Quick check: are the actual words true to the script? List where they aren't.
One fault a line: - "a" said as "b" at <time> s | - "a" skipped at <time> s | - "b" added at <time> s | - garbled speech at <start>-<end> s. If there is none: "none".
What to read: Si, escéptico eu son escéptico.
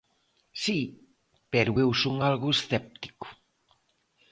- "escéptico" said as "pero" at 1.5 s
- "algo" added at 2.3 s